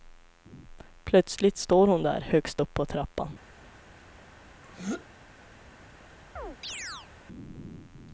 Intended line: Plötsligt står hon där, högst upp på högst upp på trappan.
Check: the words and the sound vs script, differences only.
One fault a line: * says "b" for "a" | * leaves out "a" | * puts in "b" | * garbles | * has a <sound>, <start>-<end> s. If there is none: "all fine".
* leaves out "högst upp på"
* has a throat clearing, 4.6-5.1 s
* has a chirp, 6.4-7.1 s